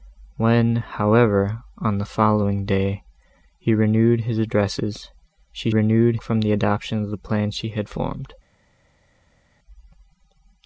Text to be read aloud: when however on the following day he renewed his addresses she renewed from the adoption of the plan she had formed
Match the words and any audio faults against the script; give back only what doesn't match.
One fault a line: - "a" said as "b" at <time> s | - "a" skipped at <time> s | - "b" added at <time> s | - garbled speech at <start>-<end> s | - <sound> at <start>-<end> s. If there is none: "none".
none